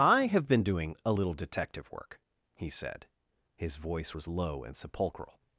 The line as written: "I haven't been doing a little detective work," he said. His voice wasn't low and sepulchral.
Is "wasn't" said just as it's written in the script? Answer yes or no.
no